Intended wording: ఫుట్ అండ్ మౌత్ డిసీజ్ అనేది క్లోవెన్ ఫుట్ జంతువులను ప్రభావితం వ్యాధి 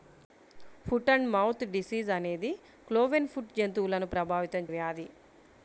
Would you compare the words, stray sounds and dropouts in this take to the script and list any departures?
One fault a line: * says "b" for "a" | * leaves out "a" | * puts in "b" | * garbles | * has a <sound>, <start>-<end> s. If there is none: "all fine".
all fine